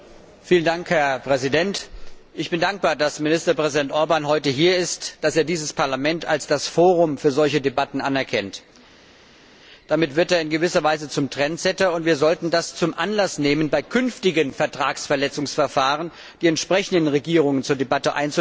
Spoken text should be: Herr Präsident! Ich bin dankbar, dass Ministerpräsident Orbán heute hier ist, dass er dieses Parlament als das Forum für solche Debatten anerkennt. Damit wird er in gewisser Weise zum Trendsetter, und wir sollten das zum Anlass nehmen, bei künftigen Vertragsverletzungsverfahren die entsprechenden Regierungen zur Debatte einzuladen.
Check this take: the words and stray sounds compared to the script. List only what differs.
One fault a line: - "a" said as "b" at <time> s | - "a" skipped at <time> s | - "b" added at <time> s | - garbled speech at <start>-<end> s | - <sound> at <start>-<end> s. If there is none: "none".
none